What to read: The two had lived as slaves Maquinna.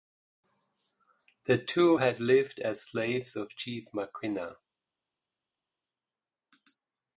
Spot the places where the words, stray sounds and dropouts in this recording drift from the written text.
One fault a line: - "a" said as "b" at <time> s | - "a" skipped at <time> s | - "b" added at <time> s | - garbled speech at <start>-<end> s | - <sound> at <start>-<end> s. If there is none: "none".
- "of Chief" added at 3.3 s